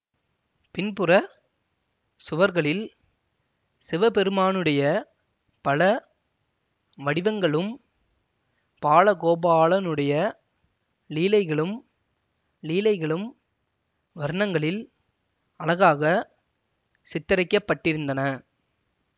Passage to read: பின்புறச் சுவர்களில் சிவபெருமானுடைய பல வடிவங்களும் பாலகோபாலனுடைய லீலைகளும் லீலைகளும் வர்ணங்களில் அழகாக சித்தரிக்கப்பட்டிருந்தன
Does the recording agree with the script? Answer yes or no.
yes